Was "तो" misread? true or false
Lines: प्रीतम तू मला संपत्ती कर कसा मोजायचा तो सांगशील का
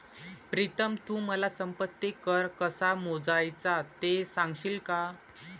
true